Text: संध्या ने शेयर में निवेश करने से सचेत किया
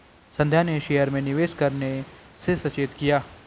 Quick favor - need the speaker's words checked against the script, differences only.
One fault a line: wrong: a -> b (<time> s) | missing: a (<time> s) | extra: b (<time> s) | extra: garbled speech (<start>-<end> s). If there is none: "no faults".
no faults